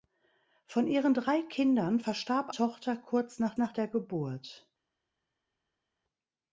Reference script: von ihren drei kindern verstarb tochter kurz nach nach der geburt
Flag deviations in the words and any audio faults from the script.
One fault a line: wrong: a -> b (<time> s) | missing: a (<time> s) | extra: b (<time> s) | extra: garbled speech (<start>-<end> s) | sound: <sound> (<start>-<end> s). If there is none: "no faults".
no faults